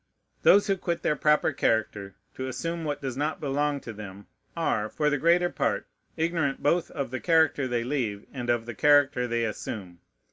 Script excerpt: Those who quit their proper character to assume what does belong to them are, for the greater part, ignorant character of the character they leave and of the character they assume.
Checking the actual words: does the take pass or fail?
fail